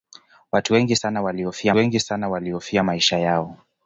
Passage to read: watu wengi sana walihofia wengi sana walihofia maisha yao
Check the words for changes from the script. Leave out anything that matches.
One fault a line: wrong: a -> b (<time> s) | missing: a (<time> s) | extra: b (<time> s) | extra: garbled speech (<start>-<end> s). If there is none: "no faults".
no faults